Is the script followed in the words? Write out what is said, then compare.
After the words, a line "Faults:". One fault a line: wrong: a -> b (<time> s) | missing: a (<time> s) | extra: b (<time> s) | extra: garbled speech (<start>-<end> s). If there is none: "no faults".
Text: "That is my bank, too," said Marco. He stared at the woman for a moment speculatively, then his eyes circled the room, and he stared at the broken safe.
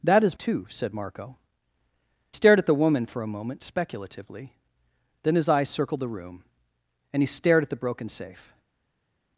"That is too," said Marco. Stared at the woman for a moment speculatively, then his eyes circled the room, and he stared at the broken safe.
Faults:
missing: my bank (0.4 s)
missing: He (1.4 s)